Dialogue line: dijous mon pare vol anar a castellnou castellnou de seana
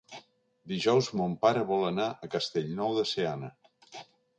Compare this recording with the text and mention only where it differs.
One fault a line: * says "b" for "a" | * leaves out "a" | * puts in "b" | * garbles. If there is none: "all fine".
* leaves out "castellnou"